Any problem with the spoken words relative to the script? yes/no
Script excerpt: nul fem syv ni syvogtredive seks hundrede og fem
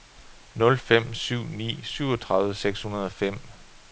no